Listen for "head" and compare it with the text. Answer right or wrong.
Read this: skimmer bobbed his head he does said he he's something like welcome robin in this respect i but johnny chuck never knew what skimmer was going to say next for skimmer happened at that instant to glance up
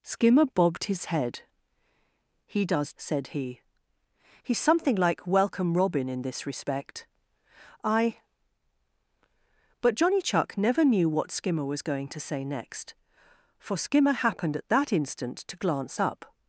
right